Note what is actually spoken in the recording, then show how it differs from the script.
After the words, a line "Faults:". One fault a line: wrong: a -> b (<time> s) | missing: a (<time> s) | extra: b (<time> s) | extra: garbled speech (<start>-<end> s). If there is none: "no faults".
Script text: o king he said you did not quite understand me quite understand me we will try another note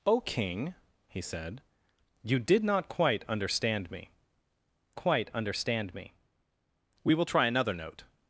o king he said you did not quite understand me quite understand me we will try another note
Faults:
no faults